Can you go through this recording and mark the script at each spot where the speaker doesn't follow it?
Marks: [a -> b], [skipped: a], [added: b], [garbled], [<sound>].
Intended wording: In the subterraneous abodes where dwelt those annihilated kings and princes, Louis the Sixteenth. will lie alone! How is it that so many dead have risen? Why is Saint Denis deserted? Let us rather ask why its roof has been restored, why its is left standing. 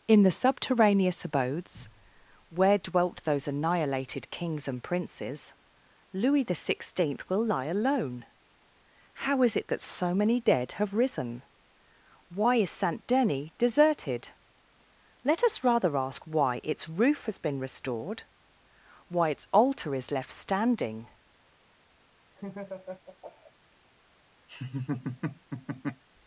In the subterraneous abodes where dwelt those annihilated kings and princes, Louis the Sixteenth. will lie alone! How is it that so many dead have risen? Why is Saint Denis deserted? Let us rather ask why its roof has been restored, why its [added: altar] is left standing. [laugh] [laugh]